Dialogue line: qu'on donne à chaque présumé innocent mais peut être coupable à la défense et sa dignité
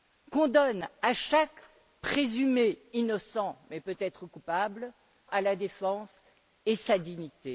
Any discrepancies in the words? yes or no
no